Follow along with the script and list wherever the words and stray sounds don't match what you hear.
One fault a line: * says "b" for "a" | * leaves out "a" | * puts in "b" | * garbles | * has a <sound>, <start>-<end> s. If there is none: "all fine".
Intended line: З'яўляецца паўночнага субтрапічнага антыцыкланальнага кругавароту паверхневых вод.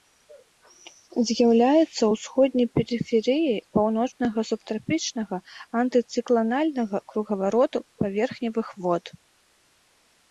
* puts in "ўсходняй перыферыяй"